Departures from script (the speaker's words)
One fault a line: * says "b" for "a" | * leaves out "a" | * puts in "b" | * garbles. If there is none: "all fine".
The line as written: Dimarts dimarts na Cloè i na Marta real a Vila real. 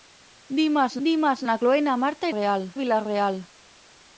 all fine